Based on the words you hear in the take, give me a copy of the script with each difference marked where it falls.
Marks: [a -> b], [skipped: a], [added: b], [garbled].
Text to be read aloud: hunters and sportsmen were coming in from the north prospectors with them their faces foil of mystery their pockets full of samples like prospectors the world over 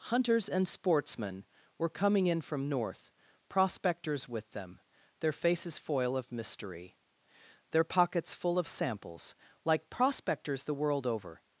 hunters and sportsmen were coming in from [skipped: the] north prospectors with them their faces foil of mystery their pockets full of samples like prospectors the world over